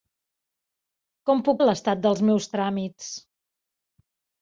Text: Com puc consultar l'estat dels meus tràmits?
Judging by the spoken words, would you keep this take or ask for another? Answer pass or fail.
fail